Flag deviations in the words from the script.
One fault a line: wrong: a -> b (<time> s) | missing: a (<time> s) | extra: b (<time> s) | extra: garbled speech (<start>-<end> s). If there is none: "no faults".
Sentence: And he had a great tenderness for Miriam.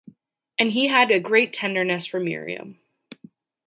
no faults